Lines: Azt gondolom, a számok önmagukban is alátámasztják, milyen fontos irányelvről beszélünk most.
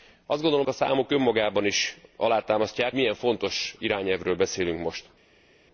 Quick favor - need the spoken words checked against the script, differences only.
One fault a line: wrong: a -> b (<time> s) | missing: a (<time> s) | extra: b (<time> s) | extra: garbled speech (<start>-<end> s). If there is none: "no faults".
no faults